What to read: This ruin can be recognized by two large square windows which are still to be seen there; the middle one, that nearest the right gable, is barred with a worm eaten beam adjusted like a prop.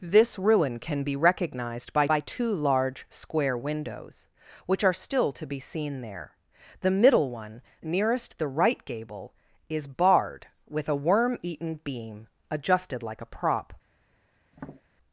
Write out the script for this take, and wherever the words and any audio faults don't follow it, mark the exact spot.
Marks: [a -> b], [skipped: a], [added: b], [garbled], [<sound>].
This ruin can be recognized by [added: by] two large square windows which are still to be seen there; the middle one, [skipped: that] nearest the right gable, is barred with a worm eaten beam adjusted like a prop. [tap]